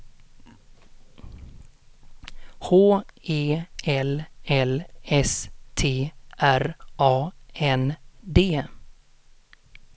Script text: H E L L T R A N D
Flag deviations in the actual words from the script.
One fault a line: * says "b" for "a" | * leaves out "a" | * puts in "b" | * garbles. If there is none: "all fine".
* puts in "S"